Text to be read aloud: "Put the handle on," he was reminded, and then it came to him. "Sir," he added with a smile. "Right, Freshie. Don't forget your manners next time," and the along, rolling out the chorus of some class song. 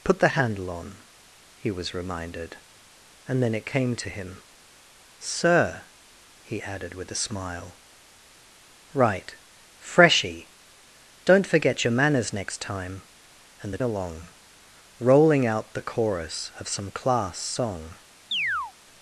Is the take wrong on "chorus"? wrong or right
right